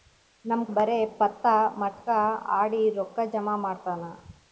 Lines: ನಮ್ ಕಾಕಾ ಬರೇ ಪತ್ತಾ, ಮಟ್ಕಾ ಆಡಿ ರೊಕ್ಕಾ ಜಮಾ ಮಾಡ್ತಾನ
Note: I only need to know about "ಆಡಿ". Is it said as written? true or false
true